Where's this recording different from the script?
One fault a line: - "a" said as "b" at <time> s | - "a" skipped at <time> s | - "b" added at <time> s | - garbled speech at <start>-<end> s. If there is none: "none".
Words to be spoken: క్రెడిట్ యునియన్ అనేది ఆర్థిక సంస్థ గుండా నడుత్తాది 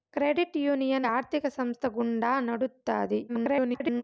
- "అనేది" skipped at 1.1 s
- garbled speech at 3.3-4.0 s